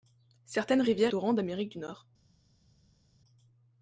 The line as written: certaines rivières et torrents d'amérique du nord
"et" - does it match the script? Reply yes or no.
no